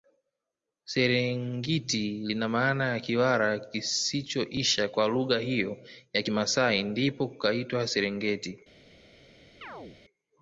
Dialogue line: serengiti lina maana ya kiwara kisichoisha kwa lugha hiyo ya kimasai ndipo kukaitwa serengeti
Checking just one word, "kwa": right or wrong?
right